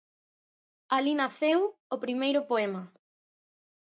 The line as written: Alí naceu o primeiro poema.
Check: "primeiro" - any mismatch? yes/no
no